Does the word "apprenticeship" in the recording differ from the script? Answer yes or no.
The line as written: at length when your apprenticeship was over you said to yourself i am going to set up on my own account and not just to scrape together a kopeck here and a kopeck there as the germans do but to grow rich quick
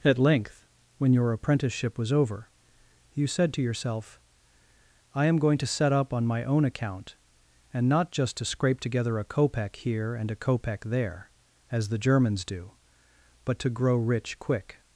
no